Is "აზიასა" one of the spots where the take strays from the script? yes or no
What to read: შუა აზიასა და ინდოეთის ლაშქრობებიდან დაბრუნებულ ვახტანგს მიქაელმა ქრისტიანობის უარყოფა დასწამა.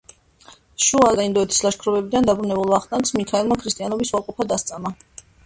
yes